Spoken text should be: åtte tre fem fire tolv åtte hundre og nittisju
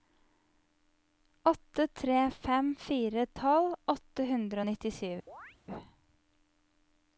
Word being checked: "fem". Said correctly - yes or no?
yes